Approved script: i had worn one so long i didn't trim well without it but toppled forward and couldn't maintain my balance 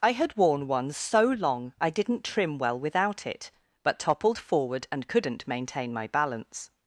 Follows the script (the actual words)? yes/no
yes